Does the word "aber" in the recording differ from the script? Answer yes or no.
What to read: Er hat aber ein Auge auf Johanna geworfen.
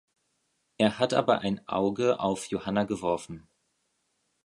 no